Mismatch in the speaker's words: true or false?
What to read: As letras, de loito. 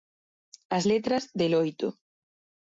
false